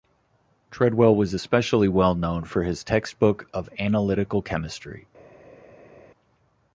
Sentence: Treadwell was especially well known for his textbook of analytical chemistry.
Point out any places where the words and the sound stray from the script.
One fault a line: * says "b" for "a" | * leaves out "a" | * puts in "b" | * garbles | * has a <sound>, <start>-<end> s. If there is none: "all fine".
all fine